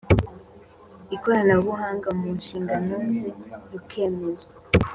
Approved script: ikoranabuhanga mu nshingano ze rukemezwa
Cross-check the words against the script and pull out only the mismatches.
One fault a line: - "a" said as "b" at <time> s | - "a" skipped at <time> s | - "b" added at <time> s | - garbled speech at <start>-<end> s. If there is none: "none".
none